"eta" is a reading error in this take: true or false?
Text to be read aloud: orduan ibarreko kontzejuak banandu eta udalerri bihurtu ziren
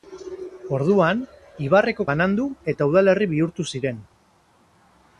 false